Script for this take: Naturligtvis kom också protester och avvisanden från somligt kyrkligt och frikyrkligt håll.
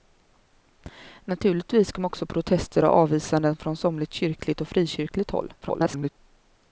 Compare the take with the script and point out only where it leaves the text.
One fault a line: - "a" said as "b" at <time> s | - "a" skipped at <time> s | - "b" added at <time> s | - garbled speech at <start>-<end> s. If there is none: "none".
- garbled speech at 5.6-6.1 s